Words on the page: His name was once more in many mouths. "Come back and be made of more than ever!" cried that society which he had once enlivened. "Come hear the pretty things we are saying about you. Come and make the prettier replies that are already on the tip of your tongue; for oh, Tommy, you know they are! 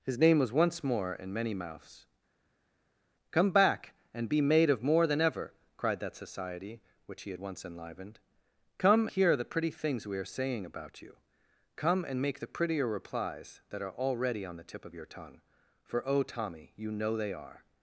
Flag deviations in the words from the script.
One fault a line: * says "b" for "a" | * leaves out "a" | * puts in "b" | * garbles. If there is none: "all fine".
all fine